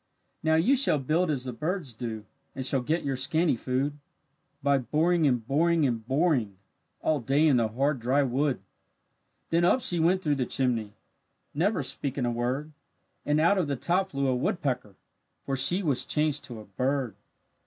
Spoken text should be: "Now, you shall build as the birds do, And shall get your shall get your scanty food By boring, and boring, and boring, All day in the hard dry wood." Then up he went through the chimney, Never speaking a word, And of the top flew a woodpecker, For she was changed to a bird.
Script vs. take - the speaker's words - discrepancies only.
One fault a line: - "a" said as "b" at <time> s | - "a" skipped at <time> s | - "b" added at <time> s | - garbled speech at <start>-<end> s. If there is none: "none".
- "shall get your" skipped at 3.1 s
- "he" said as "she" at 9.8 s
- "out" added at 13.4 s